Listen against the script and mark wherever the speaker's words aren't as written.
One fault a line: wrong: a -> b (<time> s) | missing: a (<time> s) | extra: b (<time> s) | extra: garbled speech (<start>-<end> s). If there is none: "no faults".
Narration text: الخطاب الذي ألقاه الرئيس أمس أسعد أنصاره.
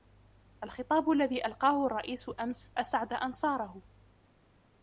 no faults